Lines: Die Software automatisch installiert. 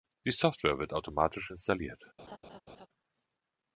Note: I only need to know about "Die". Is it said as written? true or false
true